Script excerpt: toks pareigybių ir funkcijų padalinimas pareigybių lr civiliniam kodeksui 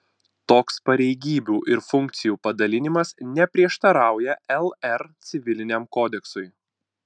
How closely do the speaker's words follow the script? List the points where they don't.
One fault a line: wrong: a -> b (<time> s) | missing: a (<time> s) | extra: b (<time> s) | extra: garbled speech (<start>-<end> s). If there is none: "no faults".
wrong: pareigybių -> neprieštarauja (3.4 s)